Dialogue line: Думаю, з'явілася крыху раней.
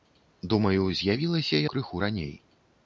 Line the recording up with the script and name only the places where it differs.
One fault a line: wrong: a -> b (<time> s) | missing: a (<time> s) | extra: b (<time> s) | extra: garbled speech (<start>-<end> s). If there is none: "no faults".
no faults